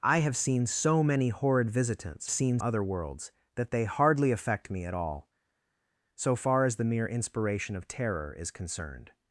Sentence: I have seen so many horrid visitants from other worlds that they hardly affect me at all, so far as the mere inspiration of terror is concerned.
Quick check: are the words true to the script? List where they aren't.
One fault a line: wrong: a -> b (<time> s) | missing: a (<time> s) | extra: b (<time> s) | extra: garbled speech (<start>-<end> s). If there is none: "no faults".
wrong: from -> seen (2.3 s)